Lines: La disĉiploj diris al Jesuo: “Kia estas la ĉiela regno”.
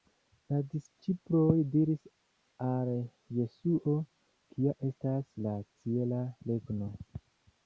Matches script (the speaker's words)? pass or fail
pass